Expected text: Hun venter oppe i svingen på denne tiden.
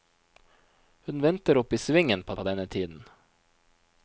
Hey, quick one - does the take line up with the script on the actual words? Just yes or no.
no